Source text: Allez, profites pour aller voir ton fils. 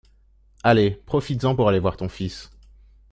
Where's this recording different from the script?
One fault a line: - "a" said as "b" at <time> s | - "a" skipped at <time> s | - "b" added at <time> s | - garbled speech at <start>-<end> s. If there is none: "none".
- "en" added at 1.4 s